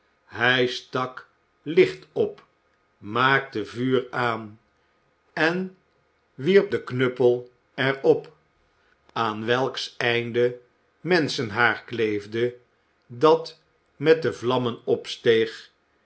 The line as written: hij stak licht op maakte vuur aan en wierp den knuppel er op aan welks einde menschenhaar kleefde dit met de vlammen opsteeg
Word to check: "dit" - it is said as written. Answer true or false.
false